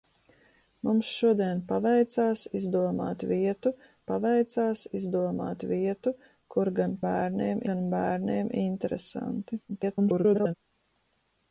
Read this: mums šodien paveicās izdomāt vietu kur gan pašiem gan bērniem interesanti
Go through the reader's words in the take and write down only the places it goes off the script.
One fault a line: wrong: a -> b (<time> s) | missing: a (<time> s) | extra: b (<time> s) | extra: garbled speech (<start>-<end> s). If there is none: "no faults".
extra: paveicās izdomāt vietu (4.1 s)
wrong: pašiem -> bērniem (7.1 s)
extra: garbled speech (9.7-10.5 s)